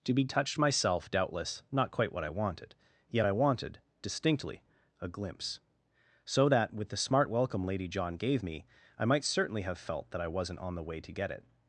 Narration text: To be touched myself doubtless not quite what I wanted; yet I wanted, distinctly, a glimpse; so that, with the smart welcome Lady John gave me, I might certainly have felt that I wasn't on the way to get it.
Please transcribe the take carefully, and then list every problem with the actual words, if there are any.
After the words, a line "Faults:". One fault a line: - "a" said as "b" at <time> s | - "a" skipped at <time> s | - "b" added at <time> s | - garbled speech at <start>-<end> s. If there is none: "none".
To be touched myself doubtless not quite what I wanted; yet I wanted, distinctly, a glimpse; so that, with the smart welcome Lady John gave me, I might certainly have felt that I wasn't on the way to get it.
Faults:
none